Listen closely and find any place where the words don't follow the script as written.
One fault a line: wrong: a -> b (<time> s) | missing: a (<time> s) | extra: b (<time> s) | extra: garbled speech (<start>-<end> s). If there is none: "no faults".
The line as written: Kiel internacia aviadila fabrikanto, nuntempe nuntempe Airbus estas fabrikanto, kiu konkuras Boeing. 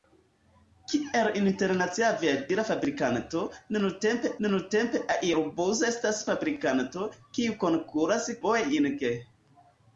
no faults